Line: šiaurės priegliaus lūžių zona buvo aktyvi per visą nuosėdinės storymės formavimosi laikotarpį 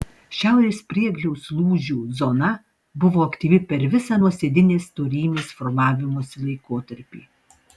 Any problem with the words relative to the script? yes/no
no